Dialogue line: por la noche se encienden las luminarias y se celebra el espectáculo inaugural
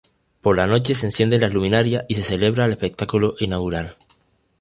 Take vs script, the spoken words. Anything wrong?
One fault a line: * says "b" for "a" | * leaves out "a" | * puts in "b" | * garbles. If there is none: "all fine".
all fine